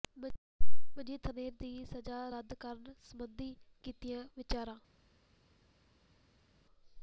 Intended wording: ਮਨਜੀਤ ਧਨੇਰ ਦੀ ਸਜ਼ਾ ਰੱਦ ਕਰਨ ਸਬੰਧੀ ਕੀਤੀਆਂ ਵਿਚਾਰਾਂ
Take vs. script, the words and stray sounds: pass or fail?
pass